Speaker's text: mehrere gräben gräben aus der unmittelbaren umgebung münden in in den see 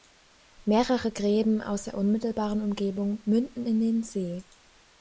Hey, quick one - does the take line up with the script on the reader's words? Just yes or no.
no